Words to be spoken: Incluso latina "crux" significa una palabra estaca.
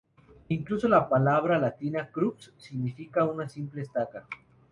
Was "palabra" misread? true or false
true